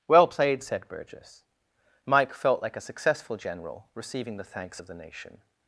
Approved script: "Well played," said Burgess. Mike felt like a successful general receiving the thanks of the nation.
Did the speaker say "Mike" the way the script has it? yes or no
yes